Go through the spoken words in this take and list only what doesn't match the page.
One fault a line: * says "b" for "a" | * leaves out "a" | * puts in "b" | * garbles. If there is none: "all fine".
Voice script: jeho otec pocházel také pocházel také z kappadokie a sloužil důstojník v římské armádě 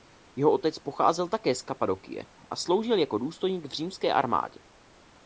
* leaves out "pocházel také"
* puts in "jako"